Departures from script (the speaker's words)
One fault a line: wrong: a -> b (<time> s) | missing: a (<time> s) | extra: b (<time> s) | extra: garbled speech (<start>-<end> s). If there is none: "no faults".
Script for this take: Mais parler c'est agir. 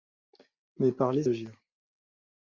missing: c'est (1.2 s)